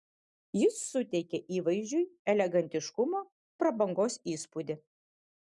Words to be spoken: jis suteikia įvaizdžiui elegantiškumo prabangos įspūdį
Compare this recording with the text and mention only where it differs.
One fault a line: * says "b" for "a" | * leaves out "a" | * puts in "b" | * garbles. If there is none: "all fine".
all fine